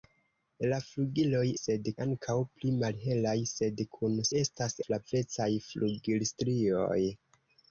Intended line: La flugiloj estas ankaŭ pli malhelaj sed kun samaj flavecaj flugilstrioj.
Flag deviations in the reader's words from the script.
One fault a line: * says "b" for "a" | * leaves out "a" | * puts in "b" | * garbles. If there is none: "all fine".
* says "sed" for "estas"
* says "estas" for "samaj"